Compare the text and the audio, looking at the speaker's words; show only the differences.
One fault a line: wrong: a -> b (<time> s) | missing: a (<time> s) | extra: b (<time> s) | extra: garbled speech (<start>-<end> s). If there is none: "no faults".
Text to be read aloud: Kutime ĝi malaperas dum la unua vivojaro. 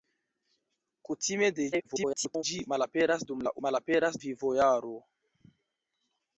extra: garbled speech (1.7-2.4 s)
wrong: unua -> malaperas (3.7 s)